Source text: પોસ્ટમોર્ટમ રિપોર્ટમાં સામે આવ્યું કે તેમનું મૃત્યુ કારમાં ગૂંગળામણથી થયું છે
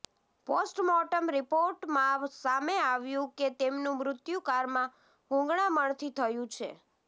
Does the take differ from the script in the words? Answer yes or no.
no